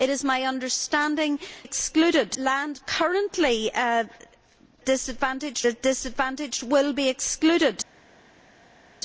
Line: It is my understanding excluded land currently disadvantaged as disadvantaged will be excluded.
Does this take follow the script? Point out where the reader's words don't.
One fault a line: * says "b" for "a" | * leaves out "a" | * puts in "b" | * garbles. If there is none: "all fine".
all fine